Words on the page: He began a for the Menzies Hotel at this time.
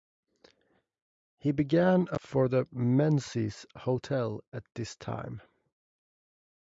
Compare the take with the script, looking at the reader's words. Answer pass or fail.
pass